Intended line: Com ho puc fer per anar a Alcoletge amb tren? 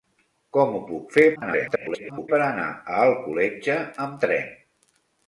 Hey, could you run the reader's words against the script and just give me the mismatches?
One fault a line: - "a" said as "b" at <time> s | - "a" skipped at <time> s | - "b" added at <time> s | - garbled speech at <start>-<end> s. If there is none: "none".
- garbled speech at 1.4-2.3 s